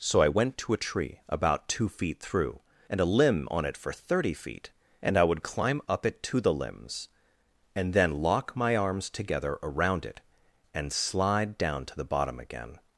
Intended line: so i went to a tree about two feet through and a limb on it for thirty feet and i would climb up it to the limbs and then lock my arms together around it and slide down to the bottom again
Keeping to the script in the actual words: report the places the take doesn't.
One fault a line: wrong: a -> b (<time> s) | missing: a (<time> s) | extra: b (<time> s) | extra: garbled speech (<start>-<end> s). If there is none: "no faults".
no faults